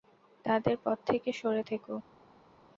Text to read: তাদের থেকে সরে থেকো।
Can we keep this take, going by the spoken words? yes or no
no